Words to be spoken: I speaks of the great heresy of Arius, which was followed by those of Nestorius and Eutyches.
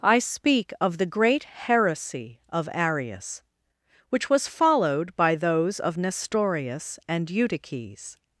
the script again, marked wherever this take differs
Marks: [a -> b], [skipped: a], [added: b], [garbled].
I [speaks -> speak] of the great heresy of Arius, which was followed by those of Nestorius and Eutyches.